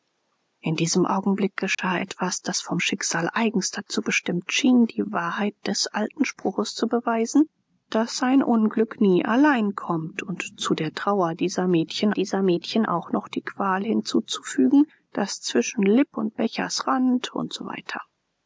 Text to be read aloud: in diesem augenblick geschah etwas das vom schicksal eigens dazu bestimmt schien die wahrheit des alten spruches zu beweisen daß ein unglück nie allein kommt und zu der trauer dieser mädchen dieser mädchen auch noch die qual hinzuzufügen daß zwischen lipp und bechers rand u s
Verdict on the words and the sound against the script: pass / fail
fail